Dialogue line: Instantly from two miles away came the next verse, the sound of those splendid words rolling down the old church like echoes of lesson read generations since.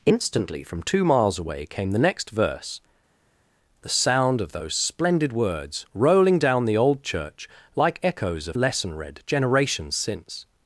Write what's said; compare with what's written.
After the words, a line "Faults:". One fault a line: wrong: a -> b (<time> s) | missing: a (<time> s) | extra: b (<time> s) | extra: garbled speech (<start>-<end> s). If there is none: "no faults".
Instantly from two miles away came the next verse, the sound of those splendid words rolling down the old church like echoes of lesson read generations since.
Faults:
no faults